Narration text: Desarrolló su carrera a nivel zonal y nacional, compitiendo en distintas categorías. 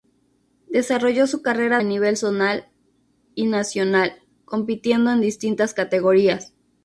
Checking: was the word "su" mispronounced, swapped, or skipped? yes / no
no